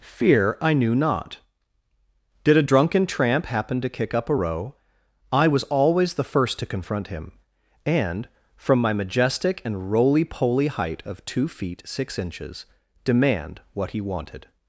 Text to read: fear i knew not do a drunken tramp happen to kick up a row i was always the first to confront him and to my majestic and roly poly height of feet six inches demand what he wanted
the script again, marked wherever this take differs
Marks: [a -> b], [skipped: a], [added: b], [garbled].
fear i knew not [do -> did] a drunken tramp happen to kick up a row i was always the first to confront him and [to -> from] my majestic and roly poly height of [added: two] feet six inches demand what he wanted